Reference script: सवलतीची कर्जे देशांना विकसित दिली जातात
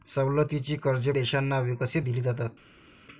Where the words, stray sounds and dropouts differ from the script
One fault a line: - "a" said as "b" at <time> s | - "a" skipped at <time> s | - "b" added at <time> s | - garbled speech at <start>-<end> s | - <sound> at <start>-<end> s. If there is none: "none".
none